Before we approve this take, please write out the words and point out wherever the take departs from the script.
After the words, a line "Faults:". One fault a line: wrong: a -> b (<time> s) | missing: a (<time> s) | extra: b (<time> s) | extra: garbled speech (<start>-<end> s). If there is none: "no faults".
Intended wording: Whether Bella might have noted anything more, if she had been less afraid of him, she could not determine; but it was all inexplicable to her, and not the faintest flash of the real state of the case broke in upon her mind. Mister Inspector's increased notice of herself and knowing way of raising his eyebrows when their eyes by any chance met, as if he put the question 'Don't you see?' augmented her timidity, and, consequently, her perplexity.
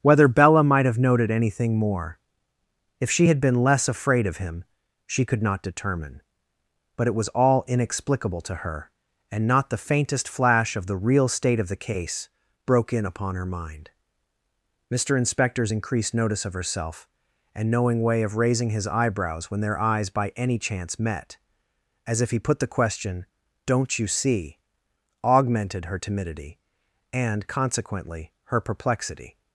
Whether Bella might have noted anything more, if she had been less afraid of him, she could not determine; but it was all inexplicable to her, and not the faintest flash of the real state of the case broke in upon her mind. Mister Inspector's increased notice of herself and knowing way of raising his eyebrows when their eyes by any chance met, as if he put the question 'Don't you see?' augmented her timidity, and, consequently, her perplexity.
Faults:
no faults